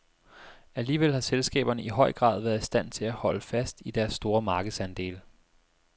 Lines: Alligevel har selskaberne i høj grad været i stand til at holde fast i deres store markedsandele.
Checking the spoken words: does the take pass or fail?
pass